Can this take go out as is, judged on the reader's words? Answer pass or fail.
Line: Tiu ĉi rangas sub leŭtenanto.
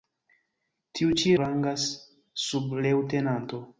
pass